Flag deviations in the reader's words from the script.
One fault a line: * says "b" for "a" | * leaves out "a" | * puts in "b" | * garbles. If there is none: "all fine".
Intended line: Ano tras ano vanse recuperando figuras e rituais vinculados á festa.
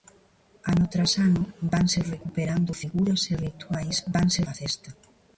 * says "vanse" for "vinculados"